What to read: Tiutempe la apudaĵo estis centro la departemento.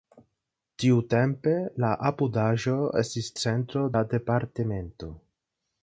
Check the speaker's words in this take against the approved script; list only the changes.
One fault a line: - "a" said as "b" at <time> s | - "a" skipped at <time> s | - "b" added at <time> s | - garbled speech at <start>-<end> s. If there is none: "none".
none